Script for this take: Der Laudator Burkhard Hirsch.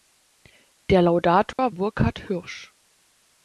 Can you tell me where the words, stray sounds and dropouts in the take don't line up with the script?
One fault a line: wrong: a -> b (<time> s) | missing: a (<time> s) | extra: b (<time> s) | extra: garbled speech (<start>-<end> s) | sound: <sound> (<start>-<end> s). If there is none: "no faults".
sound: dropout (1.5-1.6 s)